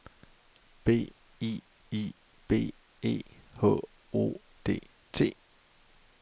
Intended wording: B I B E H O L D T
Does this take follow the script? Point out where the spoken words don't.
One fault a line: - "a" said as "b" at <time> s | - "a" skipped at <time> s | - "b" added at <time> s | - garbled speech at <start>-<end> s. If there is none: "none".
- "I" added at 1.9 s
- "L" skipped at 4.4 s